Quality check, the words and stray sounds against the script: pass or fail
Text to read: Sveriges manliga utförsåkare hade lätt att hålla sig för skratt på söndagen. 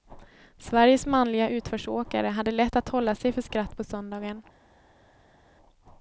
pass